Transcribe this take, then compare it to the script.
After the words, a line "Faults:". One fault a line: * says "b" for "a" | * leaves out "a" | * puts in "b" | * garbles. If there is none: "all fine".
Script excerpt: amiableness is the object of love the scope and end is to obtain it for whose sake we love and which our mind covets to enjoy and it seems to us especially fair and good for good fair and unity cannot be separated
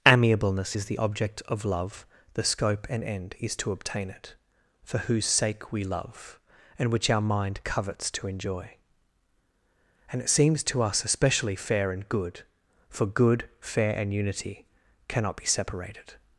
amiableness is the object of love the scope and end is to obtain it for whose sake we love and which our mind covets to enjoy and it seems to us especially fair and good for good fair and unity cannot be separated
Faults:
all fine